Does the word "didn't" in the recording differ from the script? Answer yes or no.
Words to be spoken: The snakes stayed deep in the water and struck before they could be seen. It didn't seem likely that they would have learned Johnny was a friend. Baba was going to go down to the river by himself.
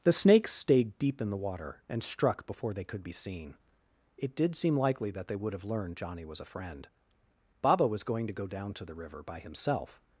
yes